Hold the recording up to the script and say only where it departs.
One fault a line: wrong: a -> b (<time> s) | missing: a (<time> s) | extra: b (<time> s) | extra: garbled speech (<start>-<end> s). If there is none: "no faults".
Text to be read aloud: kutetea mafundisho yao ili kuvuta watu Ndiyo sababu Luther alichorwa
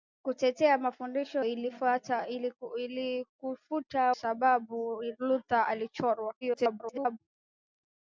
missing: yao (1.4 s)
missing: watu Ndiyo (4.1 s)
extra: garbled speech (6.4-7.2 s)